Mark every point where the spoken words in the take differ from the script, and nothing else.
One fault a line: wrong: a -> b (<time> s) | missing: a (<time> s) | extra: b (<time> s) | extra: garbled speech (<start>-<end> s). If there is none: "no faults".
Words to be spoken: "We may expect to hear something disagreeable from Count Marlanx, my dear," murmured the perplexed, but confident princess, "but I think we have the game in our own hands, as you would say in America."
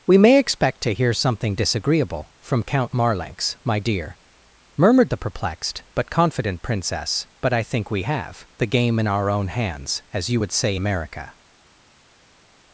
missing: in (10.8 s)